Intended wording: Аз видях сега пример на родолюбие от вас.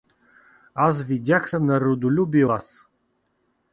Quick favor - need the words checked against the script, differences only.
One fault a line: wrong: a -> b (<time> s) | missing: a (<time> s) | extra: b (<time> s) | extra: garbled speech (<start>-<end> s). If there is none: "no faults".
missing: сега пример (1.5 s)
missing: от (2.4 s)